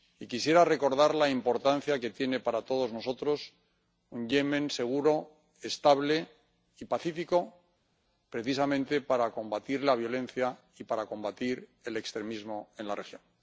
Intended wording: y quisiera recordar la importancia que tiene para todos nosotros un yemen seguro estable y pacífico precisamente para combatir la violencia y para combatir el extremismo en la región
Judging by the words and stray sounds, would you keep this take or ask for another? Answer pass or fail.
pass